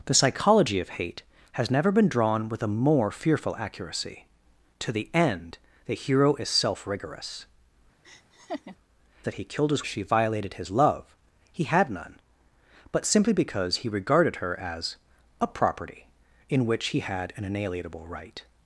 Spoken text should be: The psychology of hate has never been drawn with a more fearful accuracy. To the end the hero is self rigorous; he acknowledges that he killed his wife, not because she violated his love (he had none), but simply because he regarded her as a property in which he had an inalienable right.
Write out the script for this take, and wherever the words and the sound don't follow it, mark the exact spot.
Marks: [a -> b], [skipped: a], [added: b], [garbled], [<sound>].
The psychology of hate has never been drawn with a more fearful accuracy. To the end the hero is self rigorous; [skipped: he acknowledges] [laugh] that he killed his [skipped: wife, not because] she violated his love (he had none), but simply because he regarded her as a property in which he had an inalienable right.